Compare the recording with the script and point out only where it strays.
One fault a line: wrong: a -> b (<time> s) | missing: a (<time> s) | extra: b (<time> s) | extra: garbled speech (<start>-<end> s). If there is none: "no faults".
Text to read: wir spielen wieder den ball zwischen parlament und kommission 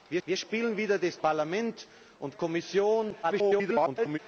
extra: wir (0.3 s)
missing: ball zwischen (1.1 s)
extra: garbled speech (3.2-4.2 s)